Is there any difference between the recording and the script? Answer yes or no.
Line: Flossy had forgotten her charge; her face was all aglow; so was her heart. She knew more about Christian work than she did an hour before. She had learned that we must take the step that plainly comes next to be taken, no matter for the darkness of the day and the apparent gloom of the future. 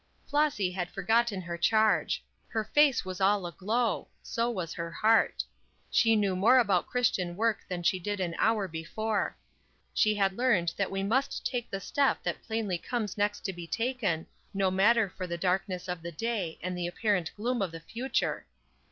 no